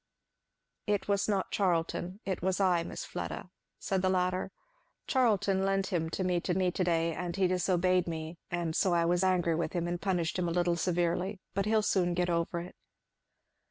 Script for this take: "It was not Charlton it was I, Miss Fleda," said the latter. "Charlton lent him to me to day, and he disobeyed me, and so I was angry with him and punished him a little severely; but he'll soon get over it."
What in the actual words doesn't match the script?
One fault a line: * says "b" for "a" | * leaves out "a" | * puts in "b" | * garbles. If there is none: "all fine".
* puts in "me to"